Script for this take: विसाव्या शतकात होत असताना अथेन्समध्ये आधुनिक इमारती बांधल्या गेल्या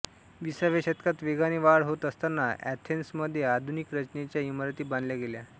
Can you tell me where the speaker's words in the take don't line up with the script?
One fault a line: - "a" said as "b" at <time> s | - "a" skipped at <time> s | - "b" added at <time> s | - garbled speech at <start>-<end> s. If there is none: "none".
- "वेगाने वाढ" added at 1.2 s
- "रचनेच्या" added at 3.9 s